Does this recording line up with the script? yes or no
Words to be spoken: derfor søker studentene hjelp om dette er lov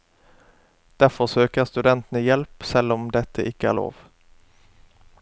no